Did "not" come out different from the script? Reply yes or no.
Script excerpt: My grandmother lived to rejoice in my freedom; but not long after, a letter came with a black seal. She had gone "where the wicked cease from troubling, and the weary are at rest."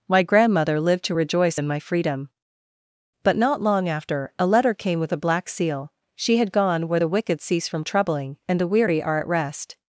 no